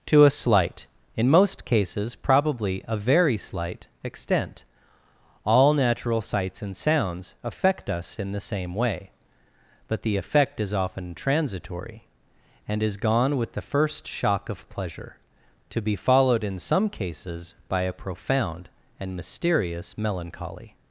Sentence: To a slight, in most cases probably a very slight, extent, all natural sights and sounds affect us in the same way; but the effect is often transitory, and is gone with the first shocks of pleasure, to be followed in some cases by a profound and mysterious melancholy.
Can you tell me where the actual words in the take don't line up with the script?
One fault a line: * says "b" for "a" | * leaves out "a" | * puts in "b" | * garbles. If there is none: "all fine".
* says "shock" for "shocks"